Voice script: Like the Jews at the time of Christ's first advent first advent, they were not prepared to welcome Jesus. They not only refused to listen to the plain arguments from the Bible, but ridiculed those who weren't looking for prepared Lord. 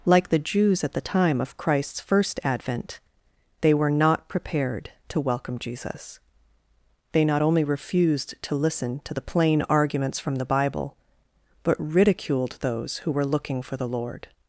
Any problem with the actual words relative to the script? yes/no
yes